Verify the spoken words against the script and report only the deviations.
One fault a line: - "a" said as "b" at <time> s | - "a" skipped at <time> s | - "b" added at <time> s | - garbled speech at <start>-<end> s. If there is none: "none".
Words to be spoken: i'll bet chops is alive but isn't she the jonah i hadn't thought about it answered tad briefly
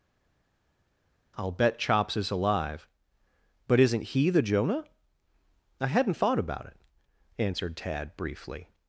- "she" said as "he" at 4.0 s